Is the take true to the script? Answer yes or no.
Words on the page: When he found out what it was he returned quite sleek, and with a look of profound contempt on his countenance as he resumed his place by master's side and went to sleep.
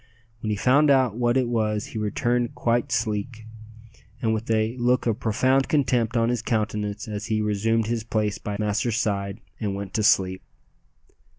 yes